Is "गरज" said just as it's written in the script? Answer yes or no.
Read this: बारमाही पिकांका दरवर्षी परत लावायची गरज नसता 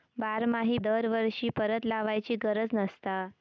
yes